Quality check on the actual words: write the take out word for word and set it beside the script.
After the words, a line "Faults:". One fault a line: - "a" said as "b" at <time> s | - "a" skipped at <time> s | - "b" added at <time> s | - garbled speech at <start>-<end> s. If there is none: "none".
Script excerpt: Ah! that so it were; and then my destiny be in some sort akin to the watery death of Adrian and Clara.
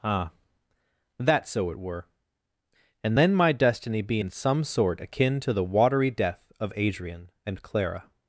Ah! that so it were; and then my destiny be in some sort akin to the watery death of Adrian and Clara.
Faults:
none